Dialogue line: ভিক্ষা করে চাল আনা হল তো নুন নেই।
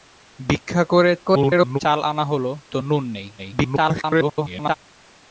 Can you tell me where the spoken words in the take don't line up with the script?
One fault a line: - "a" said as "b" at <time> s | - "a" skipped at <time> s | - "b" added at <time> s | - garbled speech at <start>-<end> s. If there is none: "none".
- garbled speech at 1.2-1.8 s
- garbled speech at 3.4-4.7 s